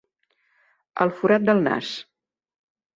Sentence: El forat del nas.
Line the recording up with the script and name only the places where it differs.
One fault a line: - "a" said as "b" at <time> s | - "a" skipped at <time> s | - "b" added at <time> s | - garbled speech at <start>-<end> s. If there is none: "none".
none